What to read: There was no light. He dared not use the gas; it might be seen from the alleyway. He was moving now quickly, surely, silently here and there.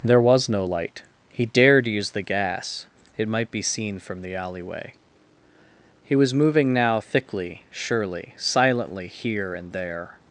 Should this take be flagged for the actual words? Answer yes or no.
yes